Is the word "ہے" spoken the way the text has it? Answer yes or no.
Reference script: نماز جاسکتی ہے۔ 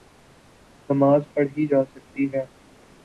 yes